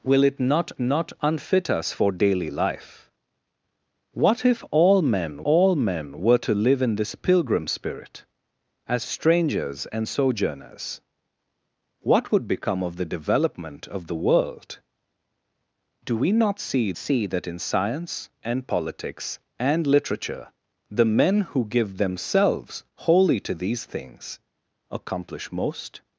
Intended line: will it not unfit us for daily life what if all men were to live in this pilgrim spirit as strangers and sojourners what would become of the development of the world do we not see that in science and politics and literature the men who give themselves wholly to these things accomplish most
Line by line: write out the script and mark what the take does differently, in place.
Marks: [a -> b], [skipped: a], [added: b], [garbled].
will it not [added: not] unfit us for daily life what if all men [added: all men] were to live in this pilgrim spirit as strangers and sojourners what would become of the development of the world do we not see [added: see] that in science and politics and literature the men who give themselves wholly to these things accomplish most